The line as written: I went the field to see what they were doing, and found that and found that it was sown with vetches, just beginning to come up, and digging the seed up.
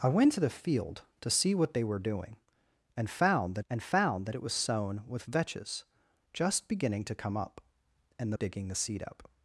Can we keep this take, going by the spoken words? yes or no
yes